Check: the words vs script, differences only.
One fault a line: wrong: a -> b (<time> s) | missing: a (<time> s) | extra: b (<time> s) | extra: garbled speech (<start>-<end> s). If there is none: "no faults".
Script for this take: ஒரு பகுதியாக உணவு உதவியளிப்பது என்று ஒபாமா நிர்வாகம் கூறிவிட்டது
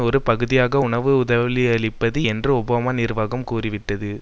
no faults